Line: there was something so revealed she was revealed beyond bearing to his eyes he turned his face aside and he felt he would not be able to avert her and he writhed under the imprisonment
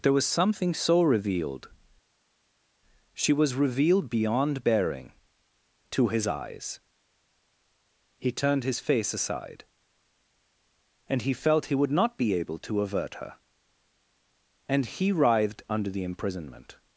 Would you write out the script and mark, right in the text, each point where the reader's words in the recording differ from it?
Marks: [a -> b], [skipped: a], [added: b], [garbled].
there was something so revealed she was revealed beyond bearing to his eyes he turned his face aside and he felt he would not be able to avert her and he writhed under the imprisonment